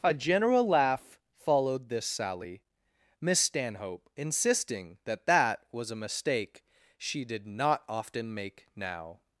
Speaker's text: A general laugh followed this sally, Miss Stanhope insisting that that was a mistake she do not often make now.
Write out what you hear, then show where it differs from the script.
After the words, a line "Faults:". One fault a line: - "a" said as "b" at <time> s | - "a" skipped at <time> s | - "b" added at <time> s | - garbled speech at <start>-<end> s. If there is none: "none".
A general laugh followed this sally, Miss Stanhope insisting that that was a mistake she did not often make now.
Faults:
- "do" said as "did" at 7.2 s